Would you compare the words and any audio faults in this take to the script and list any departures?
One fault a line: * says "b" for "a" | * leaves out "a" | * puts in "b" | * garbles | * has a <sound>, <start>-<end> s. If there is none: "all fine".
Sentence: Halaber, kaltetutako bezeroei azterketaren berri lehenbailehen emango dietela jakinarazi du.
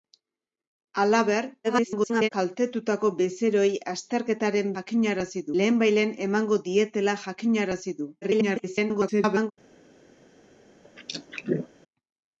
* garbles
* says "jakinarazi" for "berri"
* garbles
* has a throat clearing, 10.8-11.7 s